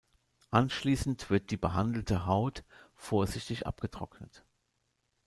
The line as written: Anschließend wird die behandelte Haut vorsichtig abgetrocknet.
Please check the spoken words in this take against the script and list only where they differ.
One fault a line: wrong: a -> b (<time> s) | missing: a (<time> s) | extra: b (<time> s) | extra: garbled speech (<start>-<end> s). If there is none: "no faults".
no faults